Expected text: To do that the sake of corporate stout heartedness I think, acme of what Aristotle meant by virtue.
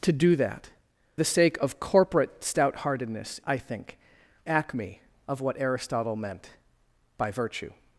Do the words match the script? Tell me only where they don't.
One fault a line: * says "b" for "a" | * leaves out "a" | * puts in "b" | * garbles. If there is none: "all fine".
all fine